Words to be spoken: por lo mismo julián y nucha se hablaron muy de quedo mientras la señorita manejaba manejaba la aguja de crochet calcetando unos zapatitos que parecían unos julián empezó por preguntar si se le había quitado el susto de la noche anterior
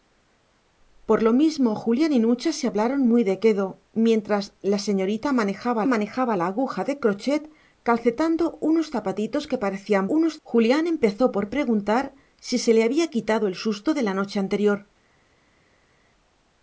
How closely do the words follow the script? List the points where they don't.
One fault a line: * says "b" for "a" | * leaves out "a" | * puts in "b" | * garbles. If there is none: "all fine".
all fine